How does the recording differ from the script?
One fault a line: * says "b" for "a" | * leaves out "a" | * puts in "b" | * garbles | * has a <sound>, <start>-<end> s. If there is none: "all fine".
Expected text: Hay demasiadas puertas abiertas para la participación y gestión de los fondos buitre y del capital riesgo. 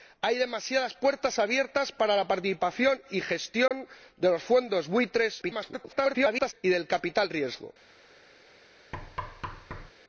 * has a dropout, 3.7-3.7 s
* garbles
* has a thud, 8.9-9.9 s